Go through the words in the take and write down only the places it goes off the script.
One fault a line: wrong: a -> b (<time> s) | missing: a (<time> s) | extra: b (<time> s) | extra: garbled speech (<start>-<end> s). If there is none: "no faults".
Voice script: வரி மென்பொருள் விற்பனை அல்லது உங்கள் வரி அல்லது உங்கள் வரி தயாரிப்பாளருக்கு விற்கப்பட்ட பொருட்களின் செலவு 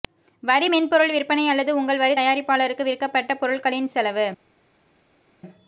missing: அல்லது உங்கள் வரி (2.2 s)